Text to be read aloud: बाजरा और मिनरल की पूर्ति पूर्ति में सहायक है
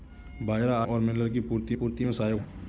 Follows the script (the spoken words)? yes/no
yes